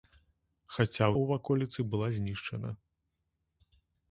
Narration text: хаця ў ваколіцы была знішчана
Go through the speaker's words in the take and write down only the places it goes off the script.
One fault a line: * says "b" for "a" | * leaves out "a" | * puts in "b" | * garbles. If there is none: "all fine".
all fine